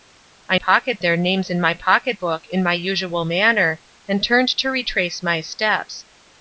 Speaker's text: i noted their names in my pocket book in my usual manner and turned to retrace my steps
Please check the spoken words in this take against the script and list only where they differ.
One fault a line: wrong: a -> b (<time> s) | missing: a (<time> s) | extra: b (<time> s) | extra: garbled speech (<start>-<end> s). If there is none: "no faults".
wrong: noted -> pocket (0.5 s)